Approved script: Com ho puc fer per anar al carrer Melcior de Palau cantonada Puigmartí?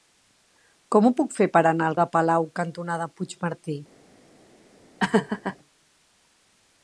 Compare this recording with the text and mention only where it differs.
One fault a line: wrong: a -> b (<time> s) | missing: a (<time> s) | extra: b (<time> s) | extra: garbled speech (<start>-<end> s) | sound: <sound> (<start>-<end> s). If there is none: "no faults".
missing: carrer Melcior (2.0 s)
sound: laugh (5.0-5.6 s)